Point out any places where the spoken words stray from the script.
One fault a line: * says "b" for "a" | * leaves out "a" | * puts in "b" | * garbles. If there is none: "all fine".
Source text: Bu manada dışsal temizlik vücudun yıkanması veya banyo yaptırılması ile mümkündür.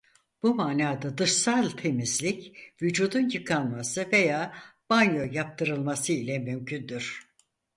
all fine